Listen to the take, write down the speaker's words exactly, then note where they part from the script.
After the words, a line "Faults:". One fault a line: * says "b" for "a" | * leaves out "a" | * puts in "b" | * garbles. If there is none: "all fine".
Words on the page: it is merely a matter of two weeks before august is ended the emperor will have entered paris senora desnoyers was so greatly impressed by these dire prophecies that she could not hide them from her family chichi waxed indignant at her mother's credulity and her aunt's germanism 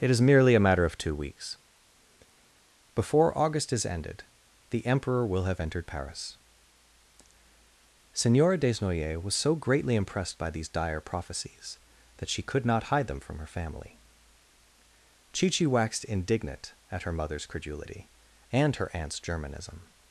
it is merely a matter of two weeks before august is ended the emperor will have entered paris senora desnoyers was so greatly impressed by these dire prophecies that she could not hide them from her family chichi waxed indignant at her mother's credulity and her aunt's germanism
Faults:
all fine